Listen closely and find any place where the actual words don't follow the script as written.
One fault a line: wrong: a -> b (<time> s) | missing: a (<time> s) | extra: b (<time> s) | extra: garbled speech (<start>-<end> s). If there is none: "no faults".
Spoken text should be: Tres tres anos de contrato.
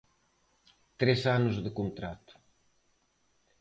missing: tres (1.2 s)